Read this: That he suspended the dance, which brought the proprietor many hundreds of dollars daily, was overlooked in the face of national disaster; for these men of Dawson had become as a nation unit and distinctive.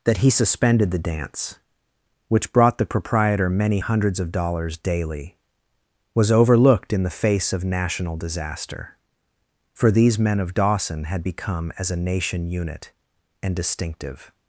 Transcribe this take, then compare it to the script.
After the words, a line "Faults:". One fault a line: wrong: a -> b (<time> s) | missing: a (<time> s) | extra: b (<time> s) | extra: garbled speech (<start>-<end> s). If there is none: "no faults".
That he suspended the dance, which brought the proprietor many hundreds of dollars daily, was overlooked in the face of national disaster; for these men of Dawson had become as a nation unit and distinctive.
Faults:
no faults